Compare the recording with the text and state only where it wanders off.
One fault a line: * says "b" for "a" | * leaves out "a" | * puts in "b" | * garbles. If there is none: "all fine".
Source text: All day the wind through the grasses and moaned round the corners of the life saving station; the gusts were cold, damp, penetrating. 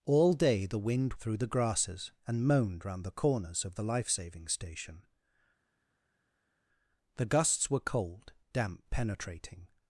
all fine